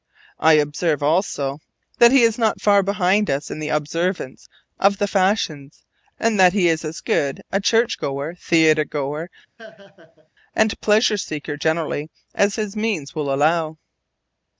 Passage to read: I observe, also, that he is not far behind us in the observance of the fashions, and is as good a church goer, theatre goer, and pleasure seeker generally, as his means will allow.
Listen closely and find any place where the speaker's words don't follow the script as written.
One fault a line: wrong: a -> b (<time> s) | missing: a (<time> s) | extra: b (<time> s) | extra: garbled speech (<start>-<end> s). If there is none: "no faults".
extra: that he (6.4 s)